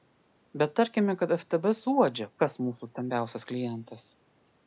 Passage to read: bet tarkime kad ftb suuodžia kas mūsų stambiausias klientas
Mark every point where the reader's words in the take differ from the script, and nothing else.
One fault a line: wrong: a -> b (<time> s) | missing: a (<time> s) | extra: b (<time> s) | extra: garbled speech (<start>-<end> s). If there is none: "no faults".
no faults